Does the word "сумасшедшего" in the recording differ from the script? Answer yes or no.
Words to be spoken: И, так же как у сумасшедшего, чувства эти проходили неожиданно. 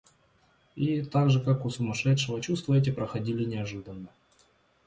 no